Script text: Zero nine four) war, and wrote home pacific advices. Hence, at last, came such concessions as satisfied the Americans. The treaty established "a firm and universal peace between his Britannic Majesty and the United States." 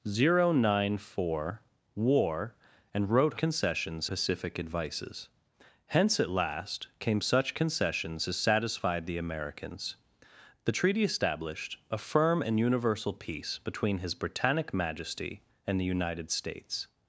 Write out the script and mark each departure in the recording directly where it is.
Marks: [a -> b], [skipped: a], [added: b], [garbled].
Zero nine four) war, and wrote [home -> concessions] pacific advices. Hence, at last, came such concessions as satisfied the Americans. The treaty established "a firm and universal peace between his Britannic Majesty and the United States."